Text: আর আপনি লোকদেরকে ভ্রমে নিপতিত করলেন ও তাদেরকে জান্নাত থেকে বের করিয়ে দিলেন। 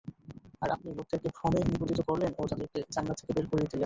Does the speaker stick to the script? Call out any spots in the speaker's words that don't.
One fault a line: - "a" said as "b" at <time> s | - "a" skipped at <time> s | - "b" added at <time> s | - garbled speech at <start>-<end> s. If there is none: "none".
none